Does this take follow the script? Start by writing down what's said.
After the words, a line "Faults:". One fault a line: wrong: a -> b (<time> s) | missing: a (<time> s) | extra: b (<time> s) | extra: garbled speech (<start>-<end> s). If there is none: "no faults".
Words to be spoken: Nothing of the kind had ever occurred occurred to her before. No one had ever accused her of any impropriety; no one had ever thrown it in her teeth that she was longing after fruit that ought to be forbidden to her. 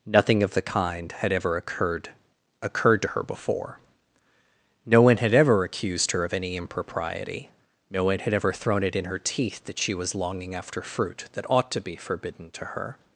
Nothing of the kind had ever occurred occurred to her before. No one had ever accused her of any impropriety; no one had ever thrown it in her teeth that she was longing after fruit that ought to be forbidden to her.
Faults:
no faults